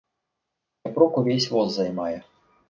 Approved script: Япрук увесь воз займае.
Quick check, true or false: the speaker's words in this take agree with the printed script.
true